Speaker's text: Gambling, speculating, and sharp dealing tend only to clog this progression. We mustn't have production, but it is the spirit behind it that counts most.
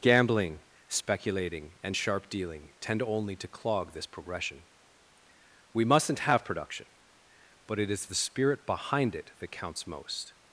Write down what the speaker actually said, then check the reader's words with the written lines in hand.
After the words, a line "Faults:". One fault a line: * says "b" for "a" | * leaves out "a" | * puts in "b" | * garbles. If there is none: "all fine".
Gambling, speculating, and sharp dealing tend only to clog this progression. We mustn't have production, but it is the spirit behind it that counts most.
Faults:
all fine